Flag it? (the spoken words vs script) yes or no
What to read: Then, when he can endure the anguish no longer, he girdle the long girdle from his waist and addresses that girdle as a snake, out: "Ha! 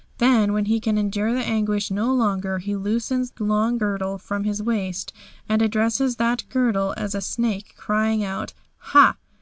yes